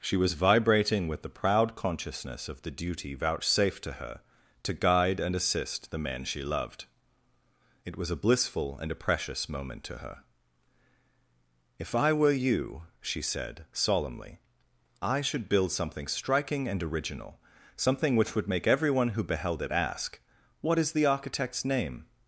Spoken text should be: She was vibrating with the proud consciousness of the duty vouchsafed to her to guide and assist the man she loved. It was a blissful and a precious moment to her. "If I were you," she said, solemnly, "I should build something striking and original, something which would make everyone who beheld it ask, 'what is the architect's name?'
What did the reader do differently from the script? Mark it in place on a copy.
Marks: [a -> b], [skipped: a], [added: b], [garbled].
She was vibrating with the proud consciousness of the duty vouchsafed to her to guide and assist the man she loved. It was a blissful and a precious moment to her. "If I were you," she said, solemnly, "I should build something striking and original, something which would make everyone who beheld it ask, 'what is the architect's name?'